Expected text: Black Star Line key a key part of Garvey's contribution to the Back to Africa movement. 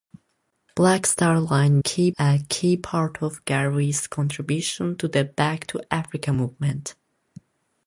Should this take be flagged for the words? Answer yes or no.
no